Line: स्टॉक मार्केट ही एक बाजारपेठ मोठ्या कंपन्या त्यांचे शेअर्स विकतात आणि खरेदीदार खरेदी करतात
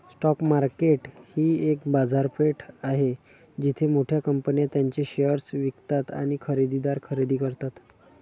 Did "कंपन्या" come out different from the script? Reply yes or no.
no